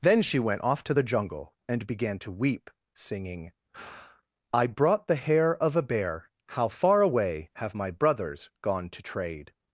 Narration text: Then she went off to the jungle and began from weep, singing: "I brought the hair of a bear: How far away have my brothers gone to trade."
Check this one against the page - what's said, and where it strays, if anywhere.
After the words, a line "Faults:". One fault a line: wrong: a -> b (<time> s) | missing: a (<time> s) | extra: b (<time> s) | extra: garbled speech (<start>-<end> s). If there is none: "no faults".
Then she went off to the jungle and began to weep, singing: "I brought the hair of a bear: How far away have my brothers gone to trade."
Faults:
wrong: from -> to (2.2 s)